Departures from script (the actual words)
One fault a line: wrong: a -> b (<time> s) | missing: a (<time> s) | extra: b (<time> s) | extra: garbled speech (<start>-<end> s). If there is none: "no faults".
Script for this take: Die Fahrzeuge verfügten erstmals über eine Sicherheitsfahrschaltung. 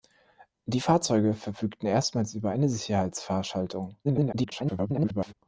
extra: garbled speech (4.0-5.3 s)